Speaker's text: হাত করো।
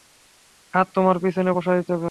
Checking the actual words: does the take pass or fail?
fail